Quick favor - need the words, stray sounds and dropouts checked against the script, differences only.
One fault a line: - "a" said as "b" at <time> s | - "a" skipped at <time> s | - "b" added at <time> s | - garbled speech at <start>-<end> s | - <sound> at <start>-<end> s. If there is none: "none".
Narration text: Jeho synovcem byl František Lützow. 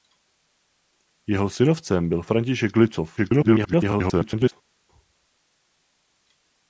- garbled speech at 3.2-4.5 s